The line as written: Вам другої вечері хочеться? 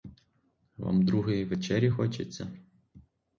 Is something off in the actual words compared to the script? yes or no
no